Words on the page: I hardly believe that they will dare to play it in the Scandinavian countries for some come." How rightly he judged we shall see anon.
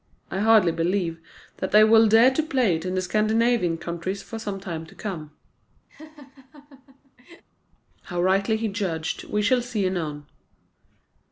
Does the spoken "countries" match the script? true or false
true